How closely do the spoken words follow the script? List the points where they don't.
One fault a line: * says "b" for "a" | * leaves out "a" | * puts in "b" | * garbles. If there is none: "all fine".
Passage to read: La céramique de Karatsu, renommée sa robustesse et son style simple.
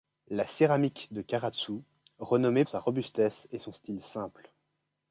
all fine